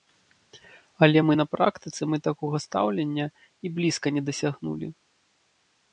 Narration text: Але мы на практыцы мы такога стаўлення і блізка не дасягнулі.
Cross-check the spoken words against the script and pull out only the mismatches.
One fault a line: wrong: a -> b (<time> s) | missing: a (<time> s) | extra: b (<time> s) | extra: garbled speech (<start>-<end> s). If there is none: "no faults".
no faults